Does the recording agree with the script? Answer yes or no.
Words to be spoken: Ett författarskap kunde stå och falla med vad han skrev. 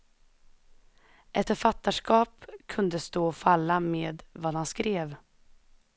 yes